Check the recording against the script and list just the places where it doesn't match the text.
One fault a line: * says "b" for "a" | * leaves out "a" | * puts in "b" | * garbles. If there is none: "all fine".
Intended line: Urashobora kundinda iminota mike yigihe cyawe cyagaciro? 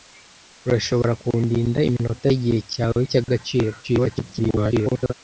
* leaves out "mike"
* garbles